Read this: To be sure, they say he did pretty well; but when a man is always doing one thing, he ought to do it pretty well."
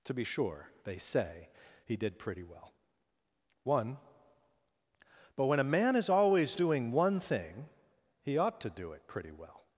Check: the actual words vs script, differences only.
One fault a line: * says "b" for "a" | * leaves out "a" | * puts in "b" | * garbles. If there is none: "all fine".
* puts in "one"